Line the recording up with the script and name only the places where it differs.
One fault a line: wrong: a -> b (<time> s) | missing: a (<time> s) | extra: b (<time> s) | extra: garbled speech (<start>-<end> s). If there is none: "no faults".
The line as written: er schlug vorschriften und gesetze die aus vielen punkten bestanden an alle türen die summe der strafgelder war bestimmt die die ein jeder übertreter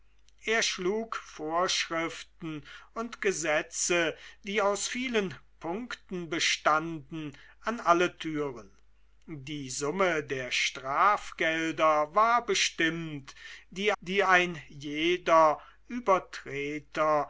no faults